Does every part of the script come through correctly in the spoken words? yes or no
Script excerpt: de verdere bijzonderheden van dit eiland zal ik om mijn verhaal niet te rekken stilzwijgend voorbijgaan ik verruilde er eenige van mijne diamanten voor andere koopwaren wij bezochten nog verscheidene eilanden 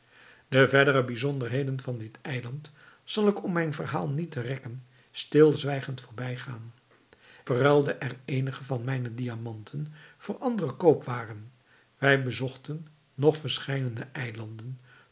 no